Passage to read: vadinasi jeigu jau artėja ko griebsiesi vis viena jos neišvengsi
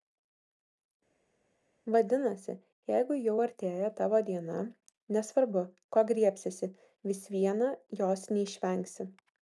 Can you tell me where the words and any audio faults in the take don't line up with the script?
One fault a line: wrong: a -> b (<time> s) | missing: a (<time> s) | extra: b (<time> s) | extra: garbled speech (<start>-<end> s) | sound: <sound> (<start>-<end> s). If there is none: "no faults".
extra: tavo diena nesvarbu (4.0 s)